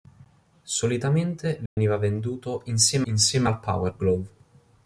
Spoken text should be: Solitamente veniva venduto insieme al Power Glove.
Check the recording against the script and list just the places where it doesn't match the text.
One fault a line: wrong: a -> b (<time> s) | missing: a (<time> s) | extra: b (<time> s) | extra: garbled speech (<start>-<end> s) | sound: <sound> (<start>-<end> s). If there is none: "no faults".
sound: dropout (1.7-1.8 s)
extra: insieme (3.0 s)